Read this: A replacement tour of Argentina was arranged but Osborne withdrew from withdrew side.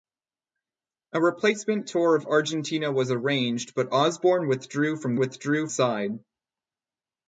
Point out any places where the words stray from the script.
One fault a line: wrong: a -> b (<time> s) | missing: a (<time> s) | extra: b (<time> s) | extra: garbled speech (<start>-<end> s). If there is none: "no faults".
no faults